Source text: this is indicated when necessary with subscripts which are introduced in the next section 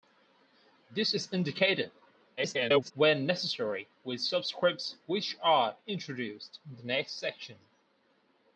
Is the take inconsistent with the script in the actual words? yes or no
yes